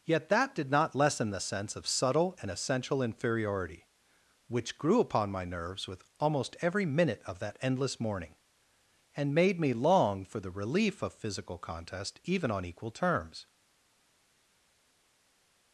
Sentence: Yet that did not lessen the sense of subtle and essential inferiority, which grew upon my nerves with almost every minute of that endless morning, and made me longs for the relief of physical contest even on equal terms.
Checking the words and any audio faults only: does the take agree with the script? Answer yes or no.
no